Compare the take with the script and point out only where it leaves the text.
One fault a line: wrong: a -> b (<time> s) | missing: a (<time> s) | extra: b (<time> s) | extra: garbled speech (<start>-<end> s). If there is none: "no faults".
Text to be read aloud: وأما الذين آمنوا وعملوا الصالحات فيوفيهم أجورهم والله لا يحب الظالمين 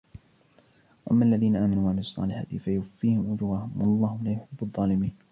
no faults